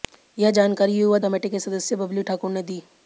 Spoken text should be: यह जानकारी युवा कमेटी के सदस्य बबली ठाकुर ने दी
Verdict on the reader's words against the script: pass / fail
pass